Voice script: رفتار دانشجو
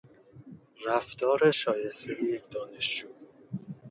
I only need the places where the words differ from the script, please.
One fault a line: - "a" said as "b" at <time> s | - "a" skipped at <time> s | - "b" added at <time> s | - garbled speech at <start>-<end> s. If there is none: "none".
- "شایستهی یک" added at 1.5 s